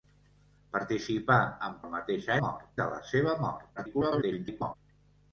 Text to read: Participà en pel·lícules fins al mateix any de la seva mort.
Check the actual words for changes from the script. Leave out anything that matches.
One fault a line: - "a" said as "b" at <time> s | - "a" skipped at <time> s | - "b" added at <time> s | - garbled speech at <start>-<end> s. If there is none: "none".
- "pel·lícules fins" skipped at 1.8 s
- "any" said as "mort" at 2.4 s
- garbled speech at 3.8-4.7 s